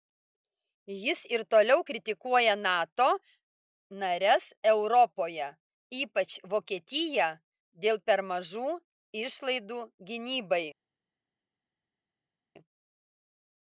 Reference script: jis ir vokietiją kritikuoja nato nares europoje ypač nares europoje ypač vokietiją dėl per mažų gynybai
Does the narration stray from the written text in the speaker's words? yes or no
yes